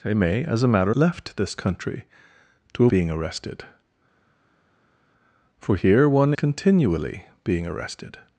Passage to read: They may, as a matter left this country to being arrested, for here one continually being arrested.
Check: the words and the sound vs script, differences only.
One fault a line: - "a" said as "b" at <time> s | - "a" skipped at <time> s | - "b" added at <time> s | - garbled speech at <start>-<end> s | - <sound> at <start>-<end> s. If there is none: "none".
none